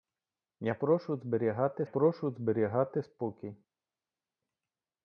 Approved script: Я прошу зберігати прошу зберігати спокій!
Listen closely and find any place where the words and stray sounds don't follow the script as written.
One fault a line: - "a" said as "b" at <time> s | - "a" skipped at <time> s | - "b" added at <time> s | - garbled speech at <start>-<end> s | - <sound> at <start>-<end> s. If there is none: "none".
none